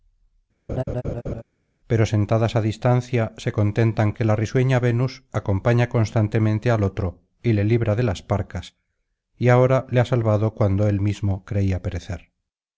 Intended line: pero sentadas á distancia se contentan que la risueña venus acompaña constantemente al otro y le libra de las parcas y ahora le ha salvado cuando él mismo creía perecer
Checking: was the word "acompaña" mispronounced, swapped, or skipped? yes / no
no